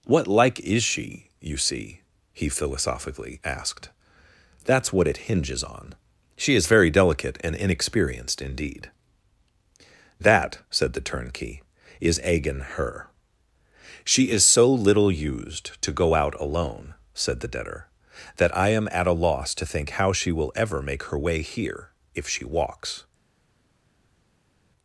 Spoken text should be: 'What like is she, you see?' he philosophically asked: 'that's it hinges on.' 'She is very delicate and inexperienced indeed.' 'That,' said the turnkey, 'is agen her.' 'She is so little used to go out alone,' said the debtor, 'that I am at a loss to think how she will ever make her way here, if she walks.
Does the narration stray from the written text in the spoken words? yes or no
yes